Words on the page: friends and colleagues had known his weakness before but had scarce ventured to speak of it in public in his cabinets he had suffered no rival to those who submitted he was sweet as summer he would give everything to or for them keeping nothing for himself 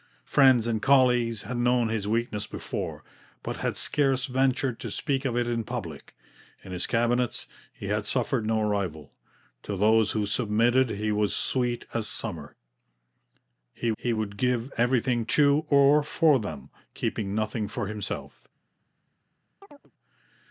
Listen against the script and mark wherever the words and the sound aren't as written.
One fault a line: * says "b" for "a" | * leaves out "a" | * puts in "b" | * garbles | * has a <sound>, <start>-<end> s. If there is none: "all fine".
* puts in "he"
* has a chirp, 19.6-19.9 s